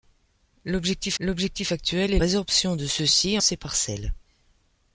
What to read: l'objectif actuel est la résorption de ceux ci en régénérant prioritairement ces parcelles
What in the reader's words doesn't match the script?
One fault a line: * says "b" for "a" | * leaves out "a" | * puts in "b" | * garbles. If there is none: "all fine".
* puts in "l'objectif"
* leaves out "la"
* leaves out "en régénérant prioritairement"